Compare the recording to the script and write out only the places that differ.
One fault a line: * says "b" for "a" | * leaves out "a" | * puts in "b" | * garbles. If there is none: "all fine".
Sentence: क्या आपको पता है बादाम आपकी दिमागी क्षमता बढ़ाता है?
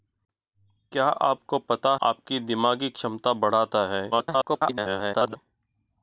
* leaves out "है बादाम"
* garbles